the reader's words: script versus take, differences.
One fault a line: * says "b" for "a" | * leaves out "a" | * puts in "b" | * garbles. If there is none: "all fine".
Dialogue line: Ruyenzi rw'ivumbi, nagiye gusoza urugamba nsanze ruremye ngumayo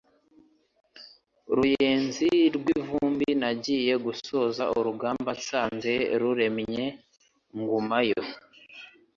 all fine